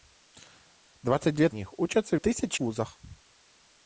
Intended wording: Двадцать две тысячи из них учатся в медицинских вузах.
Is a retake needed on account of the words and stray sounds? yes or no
yes